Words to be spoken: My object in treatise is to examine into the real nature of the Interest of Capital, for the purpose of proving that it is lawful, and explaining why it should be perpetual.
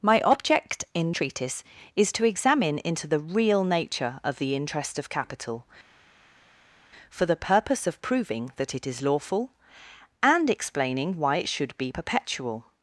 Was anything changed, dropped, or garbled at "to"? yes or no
no